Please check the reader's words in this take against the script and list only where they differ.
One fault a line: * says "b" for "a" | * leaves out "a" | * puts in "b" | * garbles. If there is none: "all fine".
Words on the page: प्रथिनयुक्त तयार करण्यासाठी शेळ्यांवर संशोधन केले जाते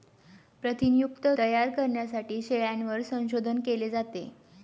all fine